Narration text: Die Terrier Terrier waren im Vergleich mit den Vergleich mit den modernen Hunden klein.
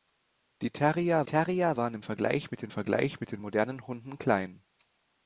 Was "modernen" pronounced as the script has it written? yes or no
yes